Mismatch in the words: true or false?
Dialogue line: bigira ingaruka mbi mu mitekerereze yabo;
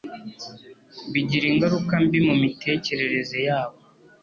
false